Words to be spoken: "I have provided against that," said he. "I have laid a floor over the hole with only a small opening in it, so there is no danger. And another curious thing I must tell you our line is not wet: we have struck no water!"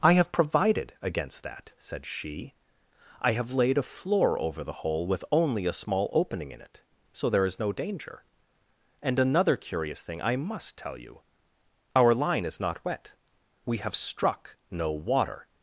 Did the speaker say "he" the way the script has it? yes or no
no